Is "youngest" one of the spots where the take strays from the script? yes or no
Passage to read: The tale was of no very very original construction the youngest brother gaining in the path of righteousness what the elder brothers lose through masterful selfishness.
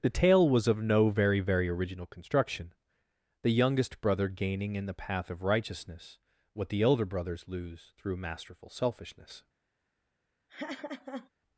no